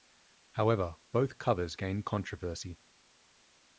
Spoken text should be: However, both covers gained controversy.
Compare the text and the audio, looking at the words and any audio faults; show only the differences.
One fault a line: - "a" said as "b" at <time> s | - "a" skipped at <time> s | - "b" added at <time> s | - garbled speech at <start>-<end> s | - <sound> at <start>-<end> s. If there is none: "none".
none